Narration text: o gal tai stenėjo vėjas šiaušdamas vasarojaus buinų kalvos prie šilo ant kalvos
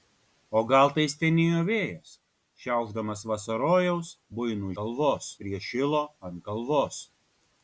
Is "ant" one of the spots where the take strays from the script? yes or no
no